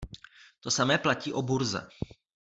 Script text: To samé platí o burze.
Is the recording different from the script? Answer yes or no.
no